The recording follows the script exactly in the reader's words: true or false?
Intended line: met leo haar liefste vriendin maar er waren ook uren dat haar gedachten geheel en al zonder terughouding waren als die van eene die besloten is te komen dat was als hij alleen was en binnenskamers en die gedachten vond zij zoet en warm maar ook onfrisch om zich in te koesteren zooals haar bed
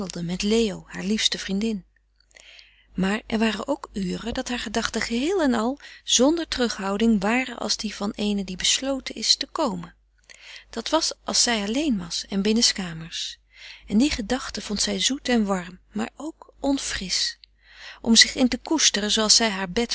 false